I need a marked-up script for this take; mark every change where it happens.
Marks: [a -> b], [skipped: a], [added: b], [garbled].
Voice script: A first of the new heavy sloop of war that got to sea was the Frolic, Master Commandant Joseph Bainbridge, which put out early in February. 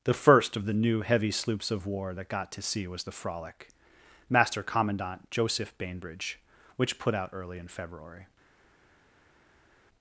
[A -> The] first of the new heavy [sloop -> sloops] of war that got to sea was the Frolic, Master Commandant Joseph Bainbridge, which put out early in February.